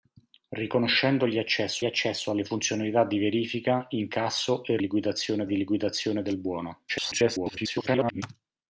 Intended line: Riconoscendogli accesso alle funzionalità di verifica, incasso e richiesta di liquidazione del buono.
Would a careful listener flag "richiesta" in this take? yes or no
yes